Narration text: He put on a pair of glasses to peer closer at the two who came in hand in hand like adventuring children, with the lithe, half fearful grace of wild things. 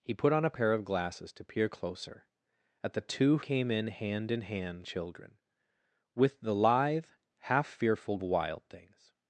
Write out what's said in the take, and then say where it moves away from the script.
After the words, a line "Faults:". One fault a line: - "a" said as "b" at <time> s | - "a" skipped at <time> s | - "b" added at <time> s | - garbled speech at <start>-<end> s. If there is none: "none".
He put on a pair of glasses to peer closer at the two came in hand in hand children, with the lithe, half fearful wild things.
Faults:
- "who" skipped at 3.4 s
- "like adventuring" skipped at 4.9 s
- "grace of" skipped at 8.2 s